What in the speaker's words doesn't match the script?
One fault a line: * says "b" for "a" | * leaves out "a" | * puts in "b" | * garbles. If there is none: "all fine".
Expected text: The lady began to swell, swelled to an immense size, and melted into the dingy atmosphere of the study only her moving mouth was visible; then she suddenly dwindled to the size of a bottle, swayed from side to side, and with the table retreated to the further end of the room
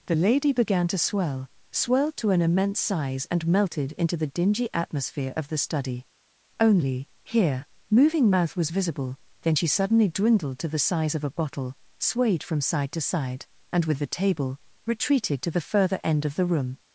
* says "here" for "her"